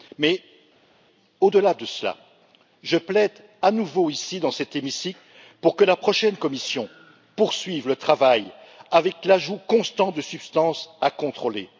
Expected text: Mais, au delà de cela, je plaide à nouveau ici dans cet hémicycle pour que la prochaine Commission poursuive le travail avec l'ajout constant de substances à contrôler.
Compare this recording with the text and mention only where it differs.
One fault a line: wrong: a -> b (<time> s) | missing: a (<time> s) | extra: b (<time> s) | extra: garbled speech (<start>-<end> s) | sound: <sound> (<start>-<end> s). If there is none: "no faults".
no faults